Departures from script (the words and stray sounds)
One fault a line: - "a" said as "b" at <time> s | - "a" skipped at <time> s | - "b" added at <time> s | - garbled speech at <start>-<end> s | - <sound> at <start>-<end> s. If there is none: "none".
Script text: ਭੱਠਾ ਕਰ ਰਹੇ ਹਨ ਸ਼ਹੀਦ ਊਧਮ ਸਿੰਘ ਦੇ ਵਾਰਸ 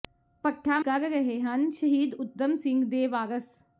none